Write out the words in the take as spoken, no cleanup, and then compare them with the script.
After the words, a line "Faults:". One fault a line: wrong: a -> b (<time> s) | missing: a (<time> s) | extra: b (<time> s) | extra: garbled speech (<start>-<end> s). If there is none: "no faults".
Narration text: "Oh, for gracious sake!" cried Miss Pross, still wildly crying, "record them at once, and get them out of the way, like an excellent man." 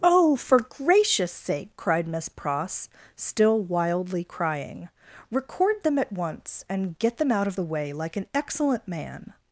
"Oh, for gracious sake!" cried Miss Pross, still wildly crying, "record them at once, and get them out of the way, like an excellent man."
Faults:
no faults